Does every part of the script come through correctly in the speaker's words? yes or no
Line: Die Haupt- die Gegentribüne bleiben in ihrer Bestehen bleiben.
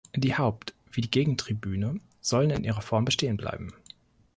no